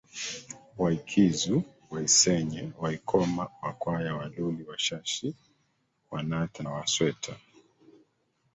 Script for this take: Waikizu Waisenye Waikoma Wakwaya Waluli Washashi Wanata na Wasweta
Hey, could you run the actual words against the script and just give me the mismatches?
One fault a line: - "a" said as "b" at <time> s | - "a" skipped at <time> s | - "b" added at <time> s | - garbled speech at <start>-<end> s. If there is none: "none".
- "na" skipped at 6.6 s